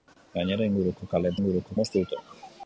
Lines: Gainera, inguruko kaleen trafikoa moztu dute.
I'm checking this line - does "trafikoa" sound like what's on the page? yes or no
no